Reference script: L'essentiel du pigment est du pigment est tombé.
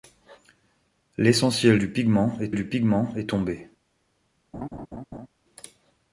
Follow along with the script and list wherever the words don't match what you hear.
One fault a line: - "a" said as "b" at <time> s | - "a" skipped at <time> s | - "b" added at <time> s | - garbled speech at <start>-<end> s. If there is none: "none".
none